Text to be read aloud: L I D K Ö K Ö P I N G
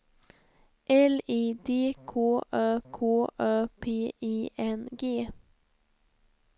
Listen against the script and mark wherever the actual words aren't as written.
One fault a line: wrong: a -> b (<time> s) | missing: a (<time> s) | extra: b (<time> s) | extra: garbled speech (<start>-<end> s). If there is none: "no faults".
no faults